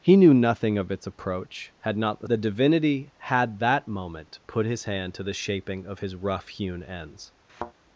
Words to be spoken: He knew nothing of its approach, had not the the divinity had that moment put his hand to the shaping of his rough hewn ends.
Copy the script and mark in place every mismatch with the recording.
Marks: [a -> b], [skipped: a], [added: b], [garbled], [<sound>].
He knew nothing of its approach, had not the the divinity had that moment put his hand to the shaping of his rough hewn ends. [thud]